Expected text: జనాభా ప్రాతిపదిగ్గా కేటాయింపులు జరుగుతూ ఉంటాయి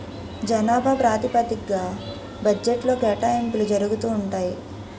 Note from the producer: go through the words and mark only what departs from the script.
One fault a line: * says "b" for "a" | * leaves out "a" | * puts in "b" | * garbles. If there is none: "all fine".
* puts in "బడ్జెట్లో"